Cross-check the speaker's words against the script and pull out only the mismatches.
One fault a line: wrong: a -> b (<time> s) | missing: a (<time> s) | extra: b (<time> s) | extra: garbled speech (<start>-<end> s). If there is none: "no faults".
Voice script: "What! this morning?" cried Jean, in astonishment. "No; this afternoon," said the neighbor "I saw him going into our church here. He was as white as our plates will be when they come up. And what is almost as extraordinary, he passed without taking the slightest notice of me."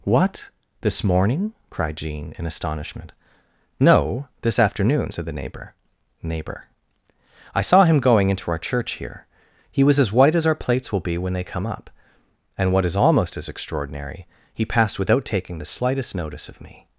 extra: neighbor (6.2 s)